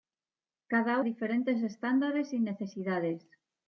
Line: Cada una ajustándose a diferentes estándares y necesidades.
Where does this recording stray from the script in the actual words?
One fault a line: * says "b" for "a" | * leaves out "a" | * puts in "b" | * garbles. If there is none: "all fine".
* leaves out "una ajustándose"